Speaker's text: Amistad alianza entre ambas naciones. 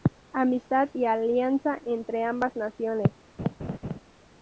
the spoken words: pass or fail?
fail